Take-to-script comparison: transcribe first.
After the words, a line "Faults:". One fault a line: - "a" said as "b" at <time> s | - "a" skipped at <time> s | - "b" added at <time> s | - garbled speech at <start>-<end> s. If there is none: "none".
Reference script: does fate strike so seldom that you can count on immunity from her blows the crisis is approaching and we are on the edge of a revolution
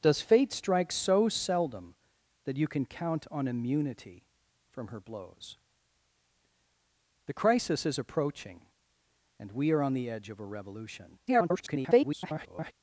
does fate strike so seldom that you can count on immunity from her blows the crisis is approaching and we are on the edge of a revolution [garbled]
Faults:
- garbled speech at 11.3-12.7 s